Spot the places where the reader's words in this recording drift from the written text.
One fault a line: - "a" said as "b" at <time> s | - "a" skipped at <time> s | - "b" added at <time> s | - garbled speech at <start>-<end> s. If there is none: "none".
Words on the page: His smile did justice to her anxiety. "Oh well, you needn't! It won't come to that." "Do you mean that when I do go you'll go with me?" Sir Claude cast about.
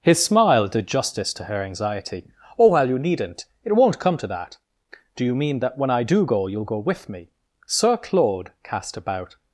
none